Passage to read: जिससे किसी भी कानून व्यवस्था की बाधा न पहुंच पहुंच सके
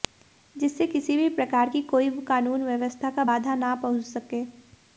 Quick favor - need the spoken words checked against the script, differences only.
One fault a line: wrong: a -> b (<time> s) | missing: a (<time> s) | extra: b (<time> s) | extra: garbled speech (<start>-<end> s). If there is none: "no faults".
extra: प्रकार की कोई (1.3 s)
wrong: की -> का (3.1 s)
missing: पहुंच (4.0 s)